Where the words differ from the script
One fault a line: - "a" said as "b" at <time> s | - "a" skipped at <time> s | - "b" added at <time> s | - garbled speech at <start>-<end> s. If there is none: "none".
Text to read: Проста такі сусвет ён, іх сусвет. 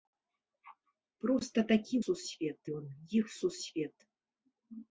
none